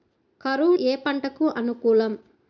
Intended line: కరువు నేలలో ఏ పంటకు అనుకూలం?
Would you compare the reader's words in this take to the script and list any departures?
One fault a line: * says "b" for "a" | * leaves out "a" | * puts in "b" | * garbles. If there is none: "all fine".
* leaves out "నేలలో"